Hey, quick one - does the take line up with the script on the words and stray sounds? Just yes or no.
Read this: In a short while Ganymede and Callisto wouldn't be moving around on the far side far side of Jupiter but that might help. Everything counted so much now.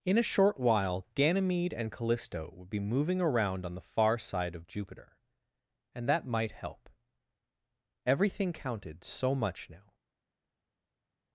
no